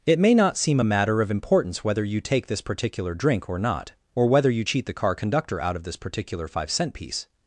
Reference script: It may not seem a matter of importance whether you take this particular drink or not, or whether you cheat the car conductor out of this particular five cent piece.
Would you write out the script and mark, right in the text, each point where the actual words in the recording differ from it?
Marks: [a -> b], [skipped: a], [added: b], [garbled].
It may not seem a matter of importance whether you take this particular drink or not, or whether you cheat the car conductor out of this particular five cent piece.